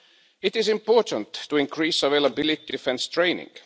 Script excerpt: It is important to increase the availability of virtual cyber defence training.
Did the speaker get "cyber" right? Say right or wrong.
wrong